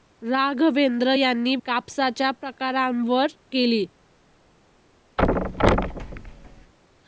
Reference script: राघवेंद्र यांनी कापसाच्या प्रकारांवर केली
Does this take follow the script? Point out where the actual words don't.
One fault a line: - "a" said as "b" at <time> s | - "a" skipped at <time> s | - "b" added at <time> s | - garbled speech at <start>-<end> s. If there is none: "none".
none